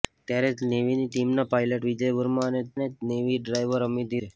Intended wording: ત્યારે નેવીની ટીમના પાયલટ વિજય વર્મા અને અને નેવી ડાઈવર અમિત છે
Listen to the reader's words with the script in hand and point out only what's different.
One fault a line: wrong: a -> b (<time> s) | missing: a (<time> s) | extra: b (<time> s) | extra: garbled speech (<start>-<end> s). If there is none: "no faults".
no faults